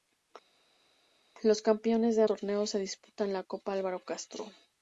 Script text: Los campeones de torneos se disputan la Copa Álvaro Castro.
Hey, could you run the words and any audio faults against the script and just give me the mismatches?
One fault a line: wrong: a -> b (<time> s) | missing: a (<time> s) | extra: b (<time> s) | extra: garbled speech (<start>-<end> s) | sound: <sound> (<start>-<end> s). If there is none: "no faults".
no faults